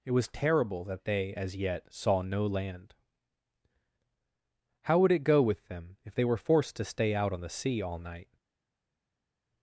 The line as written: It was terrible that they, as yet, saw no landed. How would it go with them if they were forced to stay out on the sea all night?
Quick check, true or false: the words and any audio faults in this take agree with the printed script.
false